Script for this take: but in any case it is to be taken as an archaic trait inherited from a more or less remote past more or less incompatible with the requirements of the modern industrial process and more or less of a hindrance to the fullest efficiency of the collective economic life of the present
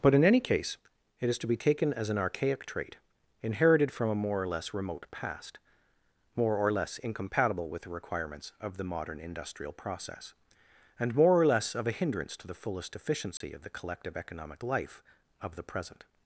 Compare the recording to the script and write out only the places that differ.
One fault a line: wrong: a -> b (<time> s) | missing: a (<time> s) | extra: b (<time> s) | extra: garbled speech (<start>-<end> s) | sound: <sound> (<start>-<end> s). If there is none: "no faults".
sound: dropout (13.4-13.4 s)